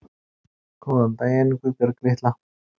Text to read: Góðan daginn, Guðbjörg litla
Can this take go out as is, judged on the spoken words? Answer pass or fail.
pass